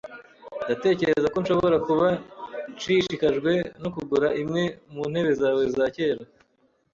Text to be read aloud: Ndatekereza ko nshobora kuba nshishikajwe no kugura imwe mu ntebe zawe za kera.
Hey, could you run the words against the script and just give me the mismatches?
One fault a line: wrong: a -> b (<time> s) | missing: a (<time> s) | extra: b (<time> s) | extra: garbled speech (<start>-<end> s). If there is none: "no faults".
no faults